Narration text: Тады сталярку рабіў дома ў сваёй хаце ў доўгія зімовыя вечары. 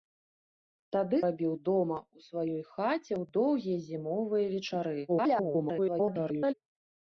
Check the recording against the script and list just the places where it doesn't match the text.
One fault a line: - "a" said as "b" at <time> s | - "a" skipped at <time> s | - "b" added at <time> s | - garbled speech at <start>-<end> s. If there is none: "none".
- "сталярку" skipped at 1.2 s
- garbled speech at 5.1-6.5 s